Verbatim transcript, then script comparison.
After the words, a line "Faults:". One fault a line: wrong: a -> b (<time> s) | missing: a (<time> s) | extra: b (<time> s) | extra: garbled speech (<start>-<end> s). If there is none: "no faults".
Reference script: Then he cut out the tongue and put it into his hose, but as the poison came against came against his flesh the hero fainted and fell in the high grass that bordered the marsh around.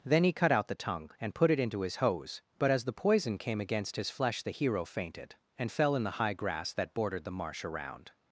Then he cut out the tongue and put it into his hose, but as the poison came against his flesh the hero fainted and fell in the high grass that bordered the marsh around.
Faults:
missing: came against (4.0 s)